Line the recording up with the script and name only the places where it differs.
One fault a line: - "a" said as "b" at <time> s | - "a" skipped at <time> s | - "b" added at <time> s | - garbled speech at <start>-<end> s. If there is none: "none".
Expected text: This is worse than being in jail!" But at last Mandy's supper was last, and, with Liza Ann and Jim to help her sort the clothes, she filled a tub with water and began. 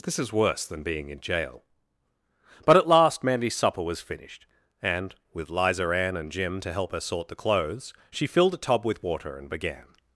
- "last" said as "finished" at 4.0 s